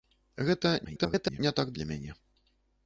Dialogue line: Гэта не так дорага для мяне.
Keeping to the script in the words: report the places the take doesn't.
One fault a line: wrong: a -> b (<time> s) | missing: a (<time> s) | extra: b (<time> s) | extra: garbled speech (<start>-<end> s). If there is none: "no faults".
extra: garbled speech (0.8-1.4 s)
missing: дорага (1.7 s)